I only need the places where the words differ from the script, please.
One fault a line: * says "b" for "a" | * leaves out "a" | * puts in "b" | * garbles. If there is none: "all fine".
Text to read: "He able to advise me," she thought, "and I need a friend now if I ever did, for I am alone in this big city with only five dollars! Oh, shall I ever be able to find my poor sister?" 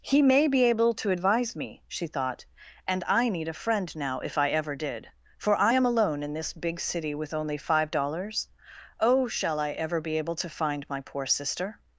* puts in "may be"